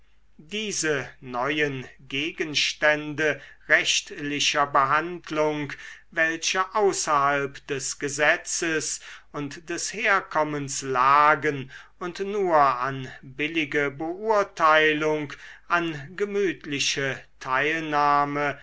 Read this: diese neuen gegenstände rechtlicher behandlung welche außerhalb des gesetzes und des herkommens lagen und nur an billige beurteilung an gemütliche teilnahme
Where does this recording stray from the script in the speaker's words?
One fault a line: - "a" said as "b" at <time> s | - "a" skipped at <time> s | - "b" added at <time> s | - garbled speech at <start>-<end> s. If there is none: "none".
none